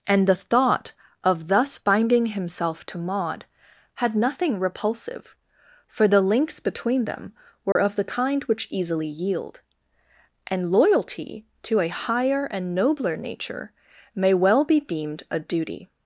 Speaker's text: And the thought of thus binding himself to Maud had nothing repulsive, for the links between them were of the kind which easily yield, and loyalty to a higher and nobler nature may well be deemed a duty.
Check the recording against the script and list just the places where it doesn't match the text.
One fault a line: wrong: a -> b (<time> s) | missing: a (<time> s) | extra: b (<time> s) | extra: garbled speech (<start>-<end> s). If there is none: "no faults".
no faults